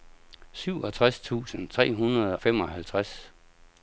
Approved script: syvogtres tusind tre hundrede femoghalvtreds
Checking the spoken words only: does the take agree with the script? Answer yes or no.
yes